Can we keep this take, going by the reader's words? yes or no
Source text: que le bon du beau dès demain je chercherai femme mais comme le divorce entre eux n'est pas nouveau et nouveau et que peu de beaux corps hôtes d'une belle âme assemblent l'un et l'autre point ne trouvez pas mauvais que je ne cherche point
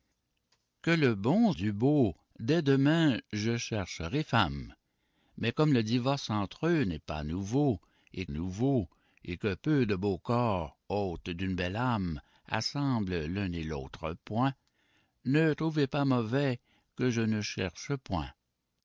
yes